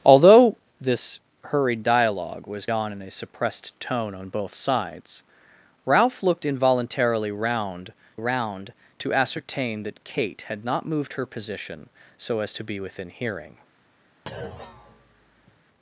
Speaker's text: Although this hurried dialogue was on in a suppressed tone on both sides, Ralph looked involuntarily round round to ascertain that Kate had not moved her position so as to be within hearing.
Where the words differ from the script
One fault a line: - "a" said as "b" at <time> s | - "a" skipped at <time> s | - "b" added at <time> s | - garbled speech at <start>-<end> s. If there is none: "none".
none